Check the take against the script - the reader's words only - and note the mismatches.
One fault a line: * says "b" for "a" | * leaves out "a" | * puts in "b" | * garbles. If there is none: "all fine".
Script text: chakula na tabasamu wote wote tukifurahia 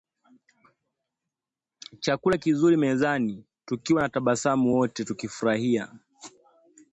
* puts in "kizuri mezani tukiwa"
* leaves out "wote"